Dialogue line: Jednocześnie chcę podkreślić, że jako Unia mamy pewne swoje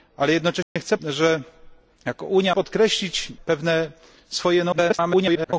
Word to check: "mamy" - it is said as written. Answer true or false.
false